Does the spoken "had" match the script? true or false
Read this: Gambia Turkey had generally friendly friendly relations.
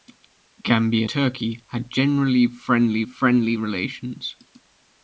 true